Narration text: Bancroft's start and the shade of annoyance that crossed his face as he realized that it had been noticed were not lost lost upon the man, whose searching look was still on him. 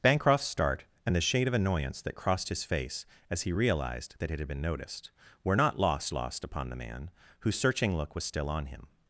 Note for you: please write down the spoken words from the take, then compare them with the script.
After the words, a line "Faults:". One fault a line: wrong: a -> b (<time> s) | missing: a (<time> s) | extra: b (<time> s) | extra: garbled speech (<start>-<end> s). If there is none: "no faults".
Bancroft's start and the shade of annoyance that crossed his face as he realized that it had been noticed were not lost lost upon the man, whose searching look was still on him.
Faults:
no faults